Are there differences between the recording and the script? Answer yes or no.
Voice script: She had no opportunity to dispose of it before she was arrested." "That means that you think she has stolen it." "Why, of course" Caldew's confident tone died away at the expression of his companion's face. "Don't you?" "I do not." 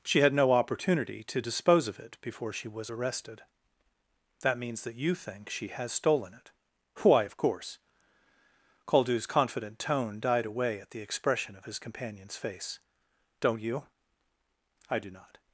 no